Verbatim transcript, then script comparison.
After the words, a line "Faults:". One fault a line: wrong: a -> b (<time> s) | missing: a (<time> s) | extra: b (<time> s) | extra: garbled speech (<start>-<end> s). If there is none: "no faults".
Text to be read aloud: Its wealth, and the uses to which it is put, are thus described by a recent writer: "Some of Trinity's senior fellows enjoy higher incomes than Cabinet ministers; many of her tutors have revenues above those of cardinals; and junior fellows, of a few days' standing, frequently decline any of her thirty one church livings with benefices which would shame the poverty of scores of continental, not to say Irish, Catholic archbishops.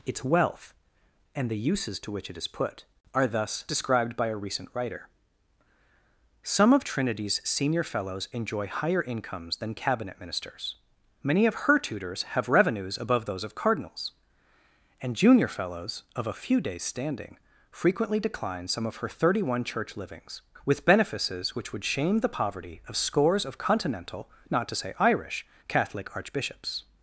Its wealth, and the uses to which it is put, are thus described by a recent writer: "Some of Trinity's senior fellows enjoy higher incomes than Cabinet ministers; many of her tutors have revenues above those of cardinals; and junior fellows, of a few days' standing, frequently decline some of her thirty one church livings with benefices which would shame the poverty of scores of continental, not to say Irish, Catholic archbishops.
Faults:
wrong: any -> some (18.7 s)